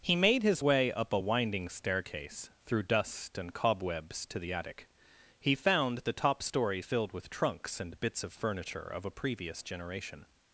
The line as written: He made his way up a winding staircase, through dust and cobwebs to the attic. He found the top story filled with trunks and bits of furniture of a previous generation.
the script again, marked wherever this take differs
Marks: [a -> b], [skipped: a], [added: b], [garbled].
He made his way up a winding staircase, through dust and cobwebs to the attic. He found the top story filled with trunks and bits of furniture of a previous generation.